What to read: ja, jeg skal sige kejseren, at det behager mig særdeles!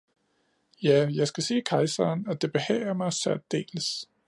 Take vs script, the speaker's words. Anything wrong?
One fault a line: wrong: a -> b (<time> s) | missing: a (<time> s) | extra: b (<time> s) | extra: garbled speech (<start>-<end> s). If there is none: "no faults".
no faults